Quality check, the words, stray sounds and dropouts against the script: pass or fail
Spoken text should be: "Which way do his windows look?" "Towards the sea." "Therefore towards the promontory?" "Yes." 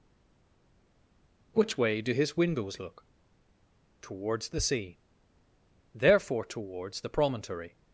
fail